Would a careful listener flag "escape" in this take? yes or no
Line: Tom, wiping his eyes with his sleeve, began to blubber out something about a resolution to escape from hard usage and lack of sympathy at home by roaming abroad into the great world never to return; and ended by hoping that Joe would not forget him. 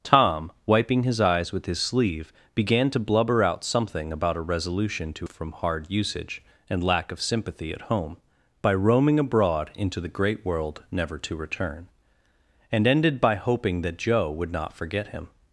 yes